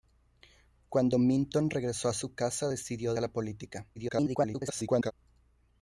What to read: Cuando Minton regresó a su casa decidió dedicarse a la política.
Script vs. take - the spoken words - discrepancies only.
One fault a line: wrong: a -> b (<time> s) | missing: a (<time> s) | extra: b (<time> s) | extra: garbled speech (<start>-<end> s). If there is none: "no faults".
missing: dedicarse (3.1 s)
extra: garbled speech (4.0-5.1 s)